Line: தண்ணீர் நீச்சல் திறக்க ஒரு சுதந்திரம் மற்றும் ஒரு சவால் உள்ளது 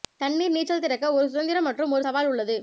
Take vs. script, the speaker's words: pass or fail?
pass